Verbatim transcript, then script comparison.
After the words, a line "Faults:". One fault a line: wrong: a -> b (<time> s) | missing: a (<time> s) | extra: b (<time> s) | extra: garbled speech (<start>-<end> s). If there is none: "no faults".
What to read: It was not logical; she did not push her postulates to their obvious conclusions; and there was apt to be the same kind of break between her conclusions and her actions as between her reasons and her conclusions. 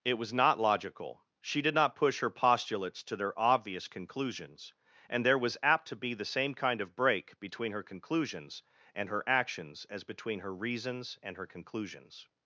It was not logical; she did not push her postulates to their obvious conclusions; and there was apt to be the same kind of break between her conclusions and her actions as between her reasons and her conclusions.
Faults:
no faults